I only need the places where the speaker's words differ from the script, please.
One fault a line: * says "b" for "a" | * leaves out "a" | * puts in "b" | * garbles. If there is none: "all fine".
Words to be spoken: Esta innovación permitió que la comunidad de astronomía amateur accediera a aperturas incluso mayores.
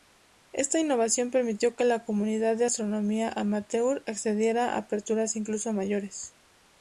all fine